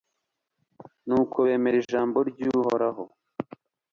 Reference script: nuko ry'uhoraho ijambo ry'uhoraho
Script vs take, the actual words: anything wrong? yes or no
yes